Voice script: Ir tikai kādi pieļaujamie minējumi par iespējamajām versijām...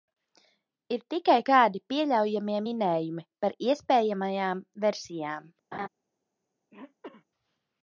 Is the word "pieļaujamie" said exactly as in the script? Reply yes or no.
yes